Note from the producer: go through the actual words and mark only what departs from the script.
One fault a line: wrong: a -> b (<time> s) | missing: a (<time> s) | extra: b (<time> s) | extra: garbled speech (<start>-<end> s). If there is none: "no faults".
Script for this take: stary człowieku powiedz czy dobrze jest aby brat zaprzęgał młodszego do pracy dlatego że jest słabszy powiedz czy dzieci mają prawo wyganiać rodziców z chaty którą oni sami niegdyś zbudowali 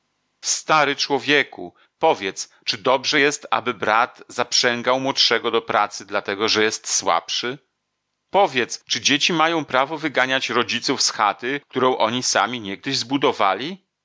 no faults